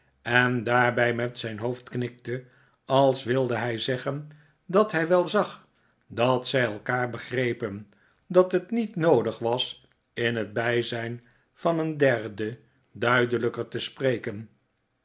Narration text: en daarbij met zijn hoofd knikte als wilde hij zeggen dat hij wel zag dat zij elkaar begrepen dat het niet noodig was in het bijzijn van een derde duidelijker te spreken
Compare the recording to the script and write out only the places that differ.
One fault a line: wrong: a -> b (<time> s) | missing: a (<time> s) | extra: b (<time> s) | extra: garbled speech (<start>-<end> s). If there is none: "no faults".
no faults